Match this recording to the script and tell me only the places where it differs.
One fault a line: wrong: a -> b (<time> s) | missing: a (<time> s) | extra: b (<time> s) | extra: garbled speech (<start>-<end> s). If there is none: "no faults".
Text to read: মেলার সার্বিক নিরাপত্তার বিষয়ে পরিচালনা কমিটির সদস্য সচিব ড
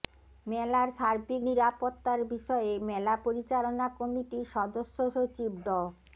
extra: মেলা (2.9 s)